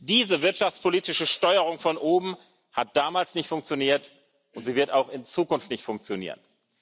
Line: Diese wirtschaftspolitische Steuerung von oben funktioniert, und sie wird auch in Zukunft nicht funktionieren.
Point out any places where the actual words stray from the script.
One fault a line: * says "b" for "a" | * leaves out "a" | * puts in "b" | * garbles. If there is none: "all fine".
* puts in "hat damals nicht"